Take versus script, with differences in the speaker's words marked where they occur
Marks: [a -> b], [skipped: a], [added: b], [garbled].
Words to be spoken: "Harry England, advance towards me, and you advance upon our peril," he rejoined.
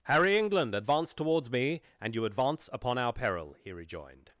"Harry England, advance towards me, and you advance upon our peril," he rejoined.